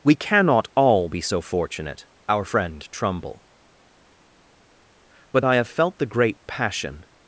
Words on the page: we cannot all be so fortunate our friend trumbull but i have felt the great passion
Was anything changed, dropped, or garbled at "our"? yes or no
no